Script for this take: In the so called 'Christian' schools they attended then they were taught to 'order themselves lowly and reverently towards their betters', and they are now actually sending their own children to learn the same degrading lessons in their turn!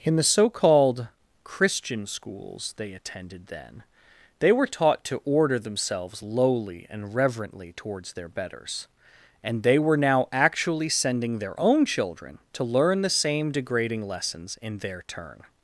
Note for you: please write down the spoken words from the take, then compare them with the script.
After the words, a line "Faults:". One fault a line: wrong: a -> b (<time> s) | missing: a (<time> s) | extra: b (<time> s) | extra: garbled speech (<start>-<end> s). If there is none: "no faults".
In the so called 'Christian' schools they attended then they were taught to 'order themselves lowly and reverently towards their betters', and they were now actually sending their own children to learn the same degrading lessons in their turn!
Faults:
wrong: are -> were (9.8 s)